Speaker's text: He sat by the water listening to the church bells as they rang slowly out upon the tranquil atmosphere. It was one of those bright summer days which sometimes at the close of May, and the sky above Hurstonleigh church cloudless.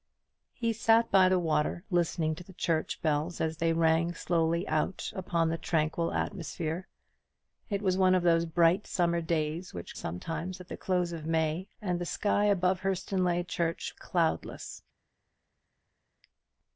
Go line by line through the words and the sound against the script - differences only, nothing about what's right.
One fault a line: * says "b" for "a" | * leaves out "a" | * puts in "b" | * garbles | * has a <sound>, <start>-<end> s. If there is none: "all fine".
all fine